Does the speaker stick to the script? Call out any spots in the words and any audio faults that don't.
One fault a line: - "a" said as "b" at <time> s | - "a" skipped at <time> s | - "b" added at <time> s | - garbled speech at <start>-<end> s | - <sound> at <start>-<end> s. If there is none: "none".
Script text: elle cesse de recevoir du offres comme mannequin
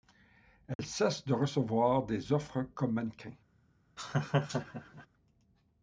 - dropout at 0.7-0.8 s
- "du" said as "des" at 2.1 s
- laugh at 4.0-5.1 s